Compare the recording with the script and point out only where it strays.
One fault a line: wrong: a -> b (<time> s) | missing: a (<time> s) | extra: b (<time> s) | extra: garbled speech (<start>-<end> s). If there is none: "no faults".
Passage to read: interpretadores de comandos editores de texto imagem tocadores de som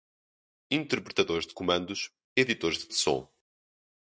missing: texto imagem tocadores (2.9 s)